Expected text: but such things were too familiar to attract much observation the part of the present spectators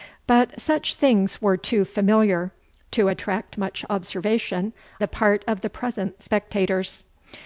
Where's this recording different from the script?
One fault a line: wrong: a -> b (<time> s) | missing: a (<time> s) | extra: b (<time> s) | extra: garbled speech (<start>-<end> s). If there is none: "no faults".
no faults